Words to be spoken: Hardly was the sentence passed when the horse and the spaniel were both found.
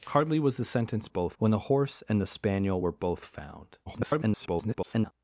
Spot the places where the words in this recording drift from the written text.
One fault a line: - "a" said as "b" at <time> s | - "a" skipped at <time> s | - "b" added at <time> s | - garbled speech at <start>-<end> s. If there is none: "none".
- "passed" said as "both" at 1.1 s
- garbled speech at 3.9-5.1 s